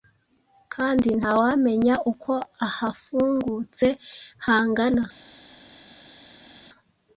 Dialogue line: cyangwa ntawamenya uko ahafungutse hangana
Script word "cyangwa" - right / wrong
wrong